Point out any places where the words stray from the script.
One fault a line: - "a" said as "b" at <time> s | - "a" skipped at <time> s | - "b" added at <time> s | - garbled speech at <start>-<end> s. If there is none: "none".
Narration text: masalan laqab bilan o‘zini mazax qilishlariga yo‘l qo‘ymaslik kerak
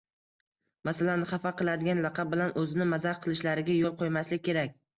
- "xafa qiladigan" added at 1.3 s